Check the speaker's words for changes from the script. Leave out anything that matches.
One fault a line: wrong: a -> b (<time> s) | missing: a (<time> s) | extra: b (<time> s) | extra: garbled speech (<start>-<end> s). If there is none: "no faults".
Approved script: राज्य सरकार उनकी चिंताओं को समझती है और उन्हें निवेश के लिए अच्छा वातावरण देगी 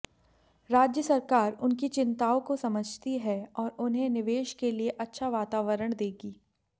no faults